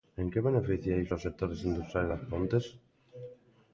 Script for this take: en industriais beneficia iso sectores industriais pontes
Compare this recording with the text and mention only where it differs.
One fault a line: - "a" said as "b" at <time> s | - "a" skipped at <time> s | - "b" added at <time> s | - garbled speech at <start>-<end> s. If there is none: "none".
- "industriais" said as "que" at 0.3 s
- "aos" added at 1.1 s
- "das" added at 2.1 s